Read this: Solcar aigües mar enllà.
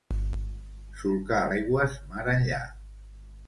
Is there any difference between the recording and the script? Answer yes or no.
no